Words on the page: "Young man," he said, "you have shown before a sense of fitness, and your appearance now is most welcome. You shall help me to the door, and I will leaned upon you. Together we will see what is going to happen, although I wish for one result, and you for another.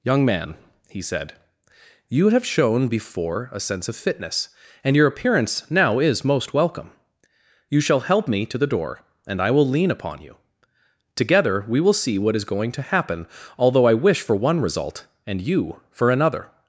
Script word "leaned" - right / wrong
wrong